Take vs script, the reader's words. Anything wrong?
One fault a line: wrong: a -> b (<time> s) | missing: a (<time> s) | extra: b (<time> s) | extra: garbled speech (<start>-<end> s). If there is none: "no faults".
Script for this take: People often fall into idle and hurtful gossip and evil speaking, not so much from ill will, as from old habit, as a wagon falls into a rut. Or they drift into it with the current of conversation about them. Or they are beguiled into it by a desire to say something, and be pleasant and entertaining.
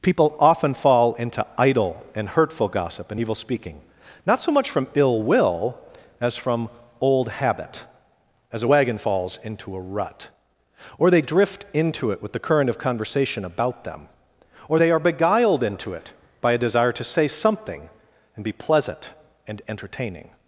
no faults